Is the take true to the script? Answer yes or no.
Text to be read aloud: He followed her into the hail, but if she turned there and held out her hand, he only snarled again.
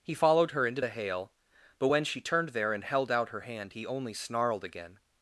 no